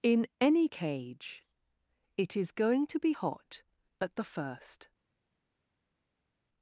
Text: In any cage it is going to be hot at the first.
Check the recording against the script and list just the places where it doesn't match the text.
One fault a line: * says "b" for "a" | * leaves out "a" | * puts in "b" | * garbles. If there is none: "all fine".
all fine